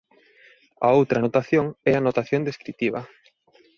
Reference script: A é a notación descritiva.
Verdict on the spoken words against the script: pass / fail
fail